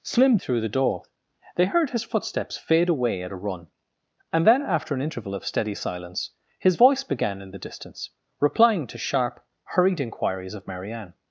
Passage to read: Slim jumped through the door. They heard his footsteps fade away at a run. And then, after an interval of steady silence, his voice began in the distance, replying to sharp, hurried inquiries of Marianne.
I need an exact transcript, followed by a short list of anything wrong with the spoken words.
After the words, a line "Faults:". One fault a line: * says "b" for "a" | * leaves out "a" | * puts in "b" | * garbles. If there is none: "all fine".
Slim through the door. They heard his footsteps fade away at a run. And then, after an interval of steady silence, his voice began in the distance, replying to sharp, hurried inquiries of Marianne.
Faults:
* leaves out "jumped"